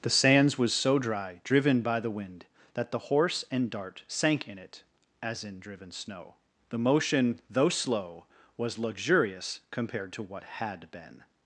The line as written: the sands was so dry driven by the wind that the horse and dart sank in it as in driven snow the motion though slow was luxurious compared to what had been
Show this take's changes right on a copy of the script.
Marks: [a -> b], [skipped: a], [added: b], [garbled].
the sands was so dry driven by the wind that the horse and dart sank in it as in driven snow the motion though slow was luxurious compared to what had been